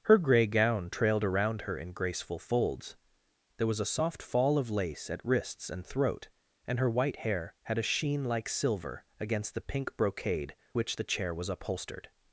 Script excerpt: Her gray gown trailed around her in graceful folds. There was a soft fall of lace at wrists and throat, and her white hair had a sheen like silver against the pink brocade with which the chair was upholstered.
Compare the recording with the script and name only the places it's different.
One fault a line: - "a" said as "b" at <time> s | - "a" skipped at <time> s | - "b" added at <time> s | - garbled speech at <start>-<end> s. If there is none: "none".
- "with" skipped at 10.6 s